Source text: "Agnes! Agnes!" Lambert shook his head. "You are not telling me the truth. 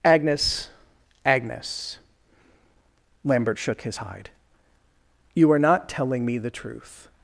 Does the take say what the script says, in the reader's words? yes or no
no